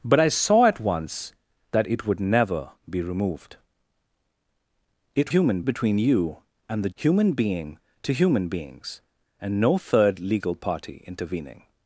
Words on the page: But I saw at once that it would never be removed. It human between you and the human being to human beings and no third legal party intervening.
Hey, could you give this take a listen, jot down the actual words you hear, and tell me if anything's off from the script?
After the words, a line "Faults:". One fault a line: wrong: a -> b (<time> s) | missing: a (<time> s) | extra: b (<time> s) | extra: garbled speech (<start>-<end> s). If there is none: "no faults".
But I saw at once that it would never be removed. It human between you and the human being to human beings and no third legal party intervening.
Faults:
no faults